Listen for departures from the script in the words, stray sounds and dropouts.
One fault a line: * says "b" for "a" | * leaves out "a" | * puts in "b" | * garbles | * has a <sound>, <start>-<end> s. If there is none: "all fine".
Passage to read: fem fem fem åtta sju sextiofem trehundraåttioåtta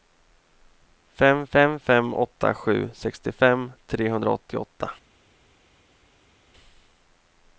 all fine